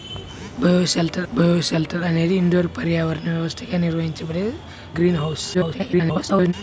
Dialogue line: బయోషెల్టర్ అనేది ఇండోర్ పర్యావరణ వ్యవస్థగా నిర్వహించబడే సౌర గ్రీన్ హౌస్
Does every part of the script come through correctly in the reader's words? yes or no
no